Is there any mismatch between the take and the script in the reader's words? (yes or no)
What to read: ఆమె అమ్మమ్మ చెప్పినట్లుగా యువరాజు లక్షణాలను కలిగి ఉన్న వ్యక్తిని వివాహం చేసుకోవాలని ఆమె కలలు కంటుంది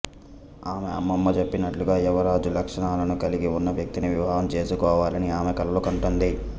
no